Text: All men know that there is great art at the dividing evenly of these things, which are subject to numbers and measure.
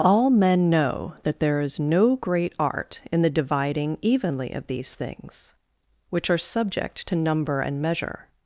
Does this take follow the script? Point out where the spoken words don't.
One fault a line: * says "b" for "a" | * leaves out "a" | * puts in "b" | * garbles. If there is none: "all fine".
* puts in "no"
* says "in" for "at"
* says "number" for "numbers"